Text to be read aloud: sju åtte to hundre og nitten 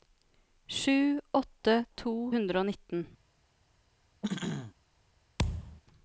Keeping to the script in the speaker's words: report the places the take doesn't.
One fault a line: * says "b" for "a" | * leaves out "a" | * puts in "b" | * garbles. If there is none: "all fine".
all fine